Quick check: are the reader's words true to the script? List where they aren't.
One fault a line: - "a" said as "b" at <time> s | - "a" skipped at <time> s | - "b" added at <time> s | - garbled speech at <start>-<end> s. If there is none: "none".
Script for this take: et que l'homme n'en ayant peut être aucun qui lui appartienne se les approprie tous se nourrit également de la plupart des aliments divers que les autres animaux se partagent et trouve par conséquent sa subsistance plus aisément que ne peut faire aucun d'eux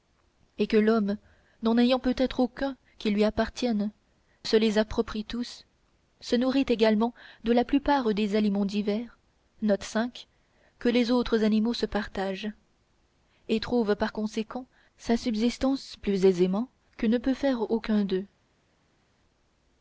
none